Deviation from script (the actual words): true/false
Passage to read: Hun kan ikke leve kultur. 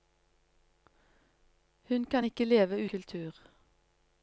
false